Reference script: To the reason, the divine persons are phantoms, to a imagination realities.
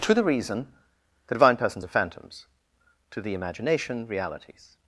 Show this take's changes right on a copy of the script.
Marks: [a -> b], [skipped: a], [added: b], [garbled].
To the reason, the divine persons are phantoms, to [a -> the] imagination realities.